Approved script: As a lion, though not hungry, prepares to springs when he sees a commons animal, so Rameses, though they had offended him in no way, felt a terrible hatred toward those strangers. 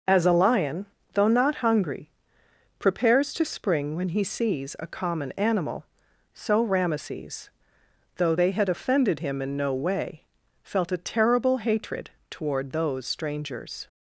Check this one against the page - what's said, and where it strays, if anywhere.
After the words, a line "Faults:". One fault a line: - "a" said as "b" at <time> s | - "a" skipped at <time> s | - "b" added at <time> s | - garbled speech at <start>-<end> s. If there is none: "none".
As a lion, though not hungry, prepares to spring when he sees a common animal, so Rameses, though they had offended him in no way, felt a terrible hatred toward those strangers.
Faults:
- "springs" said as "spring" at 3.5 s
- "commons" said as "common" at 4.9 s